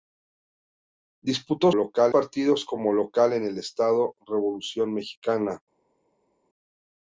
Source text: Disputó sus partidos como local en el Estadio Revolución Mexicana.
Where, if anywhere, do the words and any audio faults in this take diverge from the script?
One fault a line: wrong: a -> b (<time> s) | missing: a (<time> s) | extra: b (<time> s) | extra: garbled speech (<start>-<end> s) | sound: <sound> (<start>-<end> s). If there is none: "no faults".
wrong: sus -> local (1.7 s)